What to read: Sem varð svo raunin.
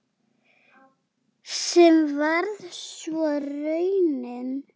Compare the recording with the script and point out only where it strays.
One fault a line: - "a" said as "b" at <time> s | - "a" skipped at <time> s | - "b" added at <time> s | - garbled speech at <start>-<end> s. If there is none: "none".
none